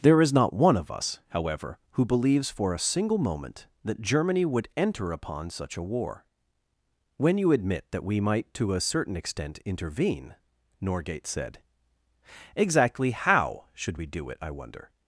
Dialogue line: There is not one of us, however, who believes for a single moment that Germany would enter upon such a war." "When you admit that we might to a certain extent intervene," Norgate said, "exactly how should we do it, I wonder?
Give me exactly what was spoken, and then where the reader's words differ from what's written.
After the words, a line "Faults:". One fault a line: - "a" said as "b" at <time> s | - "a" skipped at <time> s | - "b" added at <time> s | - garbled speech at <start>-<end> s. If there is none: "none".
There is not one of us, however, who believes for a single moment that Germany would enter upon such a war." "When you admit that we might to a certain extent intervene," Norgate said, "exactly how should we do it, I wonder?
Faults:
none